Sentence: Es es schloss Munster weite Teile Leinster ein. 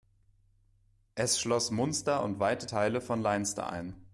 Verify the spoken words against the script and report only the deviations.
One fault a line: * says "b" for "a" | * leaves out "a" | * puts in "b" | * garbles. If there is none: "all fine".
* leaves out "es"
* puts in "und"
* puts in "von"